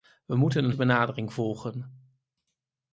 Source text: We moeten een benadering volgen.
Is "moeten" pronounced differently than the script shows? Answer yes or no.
no